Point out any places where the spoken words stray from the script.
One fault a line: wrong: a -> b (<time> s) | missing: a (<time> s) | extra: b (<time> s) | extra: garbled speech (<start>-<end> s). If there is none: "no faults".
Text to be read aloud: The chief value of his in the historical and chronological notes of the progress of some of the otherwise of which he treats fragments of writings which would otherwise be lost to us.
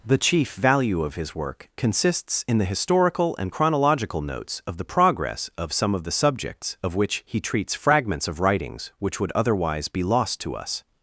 extra: work consists (1.4 s)
wrong: otherwise -> subjects (6.1 s)